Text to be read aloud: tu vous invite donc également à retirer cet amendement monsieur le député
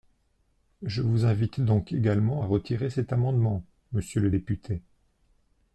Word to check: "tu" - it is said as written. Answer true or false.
false